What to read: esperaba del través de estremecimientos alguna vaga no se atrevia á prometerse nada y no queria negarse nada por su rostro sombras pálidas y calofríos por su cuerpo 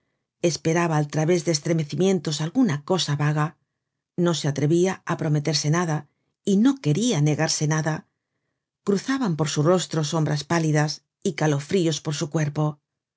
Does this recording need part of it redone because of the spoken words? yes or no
yes